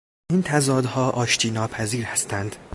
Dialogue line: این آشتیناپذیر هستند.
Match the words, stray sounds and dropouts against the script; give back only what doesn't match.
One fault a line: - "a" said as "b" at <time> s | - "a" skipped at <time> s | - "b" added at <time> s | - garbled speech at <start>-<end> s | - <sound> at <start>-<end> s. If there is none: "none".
- "تضادها" added at 0.4 s